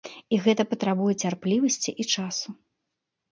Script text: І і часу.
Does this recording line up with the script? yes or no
no